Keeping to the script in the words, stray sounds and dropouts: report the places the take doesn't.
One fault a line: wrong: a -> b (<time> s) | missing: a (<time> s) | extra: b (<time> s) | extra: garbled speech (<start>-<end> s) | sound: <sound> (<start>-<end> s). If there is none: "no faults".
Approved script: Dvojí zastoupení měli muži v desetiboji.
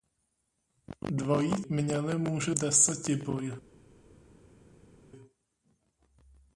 missing: zastoupení (1.6 s)
missing: v (2.5 s)